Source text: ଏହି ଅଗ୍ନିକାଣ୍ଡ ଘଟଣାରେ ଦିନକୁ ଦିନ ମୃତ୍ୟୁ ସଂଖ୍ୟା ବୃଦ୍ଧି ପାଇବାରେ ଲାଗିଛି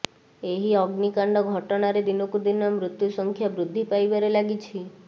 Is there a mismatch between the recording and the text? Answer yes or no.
no